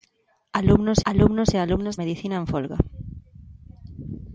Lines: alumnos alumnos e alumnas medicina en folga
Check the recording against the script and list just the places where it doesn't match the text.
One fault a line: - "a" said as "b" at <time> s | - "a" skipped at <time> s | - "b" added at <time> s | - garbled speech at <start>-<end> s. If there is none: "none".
none